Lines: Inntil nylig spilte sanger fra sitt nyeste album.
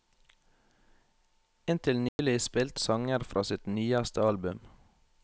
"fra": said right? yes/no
yes